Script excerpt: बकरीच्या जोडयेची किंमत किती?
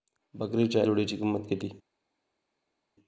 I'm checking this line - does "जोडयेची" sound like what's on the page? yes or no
yes